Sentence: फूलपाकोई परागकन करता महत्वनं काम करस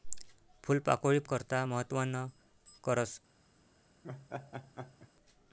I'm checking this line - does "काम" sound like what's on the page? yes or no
no